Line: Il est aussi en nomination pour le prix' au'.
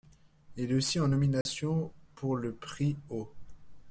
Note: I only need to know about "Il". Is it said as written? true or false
true